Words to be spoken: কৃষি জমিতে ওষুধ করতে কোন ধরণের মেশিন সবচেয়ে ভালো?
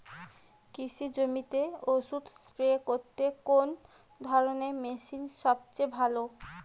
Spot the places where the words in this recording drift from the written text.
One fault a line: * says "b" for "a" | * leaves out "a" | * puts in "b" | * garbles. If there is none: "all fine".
* puts in "স্প্রে"